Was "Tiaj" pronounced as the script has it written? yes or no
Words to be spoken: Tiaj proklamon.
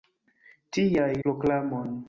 yes